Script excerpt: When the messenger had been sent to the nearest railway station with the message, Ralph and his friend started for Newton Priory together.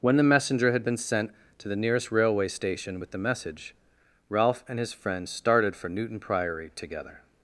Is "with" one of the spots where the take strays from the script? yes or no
no